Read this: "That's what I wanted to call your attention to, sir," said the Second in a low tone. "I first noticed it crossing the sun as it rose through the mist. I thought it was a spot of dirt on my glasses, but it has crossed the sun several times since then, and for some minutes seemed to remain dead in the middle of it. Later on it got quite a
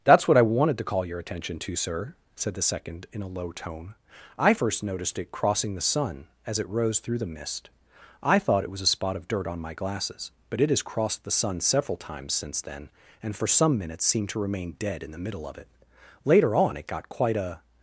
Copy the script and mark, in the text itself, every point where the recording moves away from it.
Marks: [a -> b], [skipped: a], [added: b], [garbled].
"That's what I wanted to call your attention to, sir," said the Second in a low tone. "I first noticed it crossing the sun as it rose through the mist. I thought it was a spot of dirt on my glasses, but it has crossed the sun several times since then, and for some minutes seemed to remain dead in the middle of it. Later on it got quite a